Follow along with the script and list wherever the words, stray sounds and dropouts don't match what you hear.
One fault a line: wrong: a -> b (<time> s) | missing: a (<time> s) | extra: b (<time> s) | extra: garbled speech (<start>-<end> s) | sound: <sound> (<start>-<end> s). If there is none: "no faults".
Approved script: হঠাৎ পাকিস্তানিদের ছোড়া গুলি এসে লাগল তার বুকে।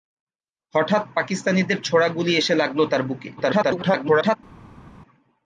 extra: garbled speech (3.4-4.4 s)